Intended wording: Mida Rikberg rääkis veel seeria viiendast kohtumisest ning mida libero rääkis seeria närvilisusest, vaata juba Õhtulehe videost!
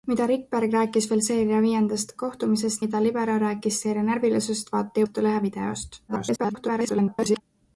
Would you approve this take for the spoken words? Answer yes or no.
no